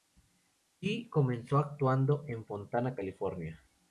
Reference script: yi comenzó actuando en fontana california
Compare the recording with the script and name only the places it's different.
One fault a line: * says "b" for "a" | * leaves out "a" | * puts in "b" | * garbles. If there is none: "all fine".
all fine